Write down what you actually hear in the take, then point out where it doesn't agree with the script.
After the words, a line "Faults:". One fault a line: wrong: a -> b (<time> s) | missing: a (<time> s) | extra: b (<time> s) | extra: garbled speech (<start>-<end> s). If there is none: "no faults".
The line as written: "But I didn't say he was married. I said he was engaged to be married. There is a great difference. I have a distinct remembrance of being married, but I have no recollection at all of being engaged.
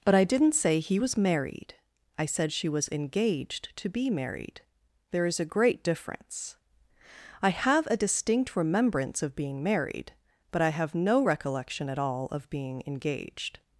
"But I didn't say he was married. I said she was engaged to be married. There is a great difference. I have a distinct remembrance of being married, but I have no recollection at all of being engaged.
Faults:
wrong: he -> she (2.5 s)